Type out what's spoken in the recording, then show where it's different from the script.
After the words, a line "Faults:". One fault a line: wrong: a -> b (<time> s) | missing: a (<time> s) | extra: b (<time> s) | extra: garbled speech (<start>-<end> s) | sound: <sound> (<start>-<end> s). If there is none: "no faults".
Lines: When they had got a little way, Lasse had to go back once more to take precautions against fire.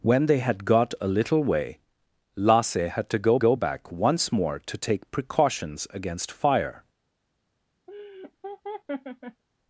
When they had got a little way, Lasse had to go go back once more to take precautions against fire.
Faults:
extra: go (3.4 s)
sound: laugh (7.9-9.4 s)